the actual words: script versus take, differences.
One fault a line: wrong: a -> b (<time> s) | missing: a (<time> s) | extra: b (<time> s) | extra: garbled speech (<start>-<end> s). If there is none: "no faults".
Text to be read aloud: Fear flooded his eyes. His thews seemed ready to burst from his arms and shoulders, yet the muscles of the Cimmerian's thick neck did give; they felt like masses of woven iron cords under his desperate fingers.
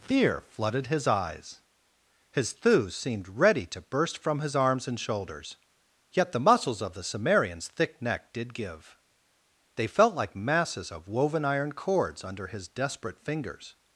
no faults